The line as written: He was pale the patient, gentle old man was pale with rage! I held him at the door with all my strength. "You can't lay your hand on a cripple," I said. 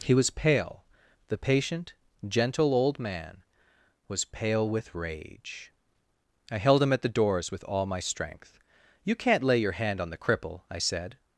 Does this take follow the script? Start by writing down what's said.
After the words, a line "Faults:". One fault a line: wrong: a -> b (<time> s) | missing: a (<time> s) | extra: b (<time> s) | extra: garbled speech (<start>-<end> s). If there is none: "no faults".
He was pale the patient, gentle old man was pale with rage! I held him at the doors with all my strength. "You can't lay your hand on the cripple," I said.
Faults:
wrong: door -> doors (7.1 s)
wrong: a -> the (10.1 s)